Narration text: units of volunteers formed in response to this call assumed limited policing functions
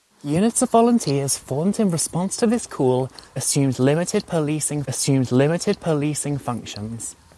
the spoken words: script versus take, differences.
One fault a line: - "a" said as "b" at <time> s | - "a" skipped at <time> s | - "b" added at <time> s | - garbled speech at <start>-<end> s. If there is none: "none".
- "assumed limited policing" added at 4.9 s